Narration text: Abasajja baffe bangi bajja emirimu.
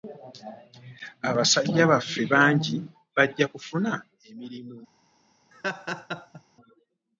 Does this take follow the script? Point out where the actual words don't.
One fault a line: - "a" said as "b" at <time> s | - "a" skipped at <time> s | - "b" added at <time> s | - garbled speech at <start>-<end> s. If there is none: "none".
- "kufuna" added at 3.5 s